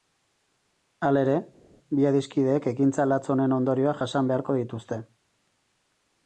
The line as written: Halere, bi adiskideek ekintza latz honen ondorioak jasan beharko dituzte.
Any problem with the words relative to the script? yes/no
no